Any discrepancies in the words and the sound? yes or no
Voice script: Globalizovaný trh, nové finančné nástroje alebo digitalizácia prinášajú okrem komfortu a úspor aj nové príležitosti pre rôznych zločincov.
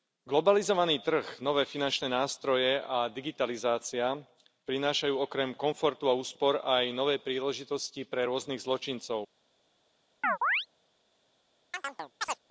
yes